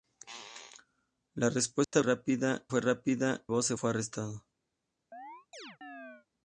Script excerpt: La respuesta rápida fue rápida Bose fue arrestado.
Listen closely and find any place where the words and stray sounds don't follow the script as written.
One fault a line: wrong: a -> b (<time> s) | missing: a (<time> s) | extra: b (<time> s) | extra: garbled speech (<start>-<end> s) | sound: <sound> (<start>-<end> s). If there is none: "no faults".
sound: dropout (1.8-1.9 s)
sound: chirp (5.1-6.3 s)